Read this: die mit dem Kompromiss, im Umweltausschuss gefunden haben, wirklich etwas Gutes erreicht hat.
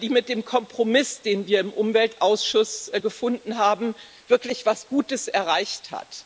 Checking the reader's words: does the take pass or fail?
fail